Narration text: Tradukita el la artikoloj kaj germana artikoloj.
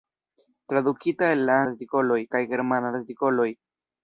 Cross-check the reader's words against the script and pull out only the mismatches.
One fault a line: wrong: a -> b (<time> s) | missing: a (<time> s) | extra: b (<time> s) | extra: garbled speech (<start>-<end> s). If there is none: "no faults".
no faults